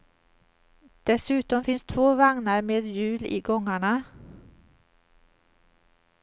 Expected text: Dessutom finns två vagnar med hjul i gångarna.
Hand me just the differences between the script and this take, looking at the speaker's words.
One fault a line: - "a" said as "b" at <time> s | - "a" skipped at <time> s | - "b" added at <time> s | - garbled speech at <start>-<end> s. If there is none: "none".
none